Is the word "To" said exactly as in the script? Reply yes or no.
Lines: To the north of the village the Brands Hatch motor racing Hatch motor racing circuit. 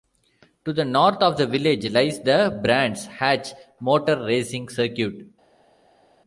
yes